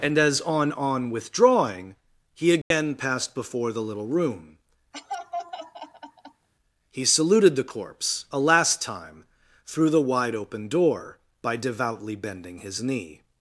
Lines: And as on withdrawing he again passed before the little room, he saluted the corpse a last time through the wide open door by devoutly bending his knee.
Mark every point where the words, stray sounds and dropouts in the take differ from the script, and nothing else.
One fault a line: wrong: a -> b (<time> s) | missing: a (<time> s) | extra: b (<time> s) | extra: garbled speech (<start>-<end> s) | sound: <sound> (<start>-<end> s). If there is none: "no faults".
extra: on (0.7 s)
sound: dropout (2.6-2.7 s)
sound: laugh (4.9-6.5 s)